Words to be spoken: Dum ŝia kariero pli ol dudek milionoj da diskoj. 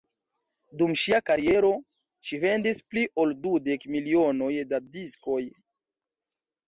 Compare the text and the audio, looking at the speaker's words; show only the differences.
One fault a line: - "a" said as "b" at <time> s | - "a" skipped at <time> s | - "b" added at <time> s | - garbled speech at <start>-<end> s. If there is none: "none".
- "ŝi vendis" added at 2.3 s